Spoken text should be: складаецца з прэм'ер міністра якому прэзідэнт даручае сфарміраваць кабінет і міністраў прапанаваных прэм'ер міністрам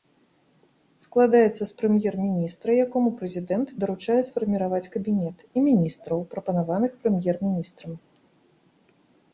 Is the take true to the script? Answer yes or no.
yes